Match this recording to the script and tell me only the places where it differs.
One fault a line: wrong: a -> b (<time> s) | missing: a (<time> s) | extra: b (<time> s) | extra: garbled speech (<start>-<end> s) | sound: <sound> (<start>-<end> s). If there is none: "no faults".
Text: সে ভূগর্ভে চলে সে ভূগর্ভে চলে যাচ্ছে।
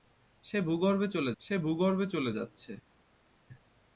no faults